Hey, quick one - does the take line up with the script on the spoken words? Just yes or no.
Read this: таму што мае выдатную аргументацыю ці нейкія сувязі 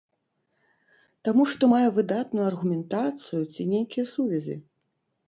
yes